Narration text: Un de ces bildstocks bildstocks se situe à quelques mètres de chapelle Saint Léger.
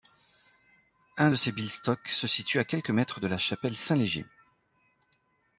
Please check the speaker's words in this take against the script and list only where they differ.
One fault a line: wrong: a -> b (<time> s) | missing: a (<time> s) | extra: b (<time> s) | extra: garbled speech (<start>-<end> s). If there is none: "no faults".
missing: bildstocks (2.1 s)
extra: la (3.3 s)